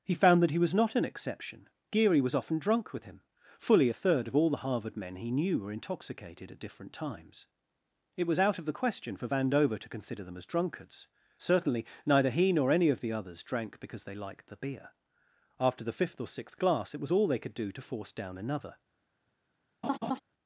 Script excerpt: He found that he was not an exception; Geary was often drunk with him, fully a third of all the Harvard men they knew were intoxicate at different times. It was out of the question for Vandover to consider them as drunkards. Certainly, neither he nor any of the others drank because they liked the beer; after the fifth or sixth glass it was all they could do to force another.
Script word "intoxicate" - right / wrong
wrong